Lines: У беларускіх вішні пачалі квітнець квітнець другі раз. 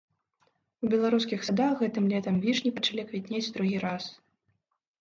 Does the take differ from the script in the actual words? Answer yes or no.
yes